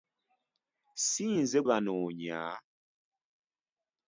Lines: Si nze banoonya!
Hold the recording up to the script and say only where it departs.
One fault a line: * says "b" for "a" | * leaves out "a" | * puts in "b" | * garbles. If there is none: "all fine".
all fine